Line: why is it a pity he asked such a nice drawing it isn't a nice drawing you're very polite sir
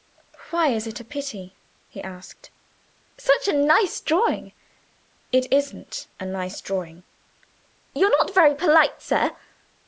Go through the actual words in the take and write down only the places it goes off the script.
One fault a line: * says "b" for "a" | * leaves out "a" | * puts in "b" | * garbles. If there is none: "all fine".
* puts in "not"